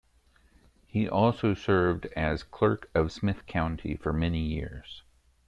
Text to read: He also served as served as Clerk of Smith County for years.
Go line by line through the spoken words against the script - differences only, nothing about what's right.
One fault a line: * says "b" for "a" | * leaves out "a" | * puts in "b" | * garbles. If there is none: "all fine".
* leaves out "served as"
* puts in "many"